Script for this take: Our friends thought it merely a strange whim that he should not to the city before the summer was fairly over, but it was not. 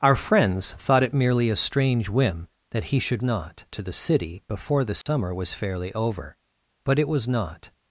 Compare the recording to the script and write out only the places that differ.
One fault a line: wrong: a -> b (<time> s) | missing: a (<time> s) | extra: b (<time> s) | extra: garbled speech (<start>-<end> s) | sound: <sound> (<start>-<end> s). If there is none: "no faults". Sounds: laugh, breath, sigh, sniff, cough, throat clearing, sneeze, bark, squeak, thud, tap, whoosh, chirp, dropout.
sound: dropout (5.0-5.1 s)